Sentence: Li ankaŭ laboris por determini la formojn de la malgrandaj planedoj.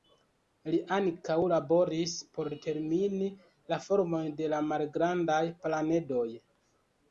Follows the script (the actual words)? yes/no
yes